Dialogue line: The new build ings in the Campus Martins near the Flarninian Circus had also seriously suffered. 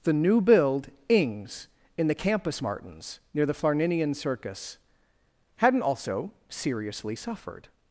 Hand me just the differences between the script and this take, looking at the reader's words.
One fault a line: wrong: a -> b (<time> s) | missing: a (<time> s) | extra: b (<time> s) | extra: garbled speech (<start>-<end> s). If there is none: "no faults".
wrong: had -> hadn't (5.6 s)